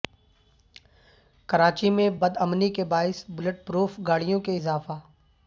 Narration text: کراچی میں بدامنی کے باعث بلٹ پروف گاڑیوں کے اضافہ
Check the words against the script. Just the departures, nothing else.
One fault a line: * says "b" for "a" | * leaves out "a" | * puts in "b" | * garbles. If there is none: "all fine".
all fine